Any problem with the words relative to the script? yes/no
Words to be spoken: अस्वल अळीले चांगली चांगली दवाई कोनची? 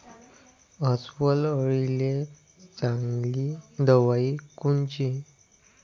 yes